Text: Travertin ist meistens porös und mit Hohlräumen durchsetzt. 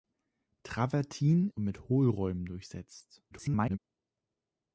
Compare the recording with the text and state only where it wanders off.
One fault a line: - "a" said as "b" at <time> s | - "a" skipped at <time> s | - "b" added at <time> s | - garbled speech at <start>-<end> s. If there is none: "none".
- "ist meistens porös" skipped at 1.5 s
- garbled speech at 3.3-3.8 s